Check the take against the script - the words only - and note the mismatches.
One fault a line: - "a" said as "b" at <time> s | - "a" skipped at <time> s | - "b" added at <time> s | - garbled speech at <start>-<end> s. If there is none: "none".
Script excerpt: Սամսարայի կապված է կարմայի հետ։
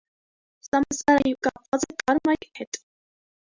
none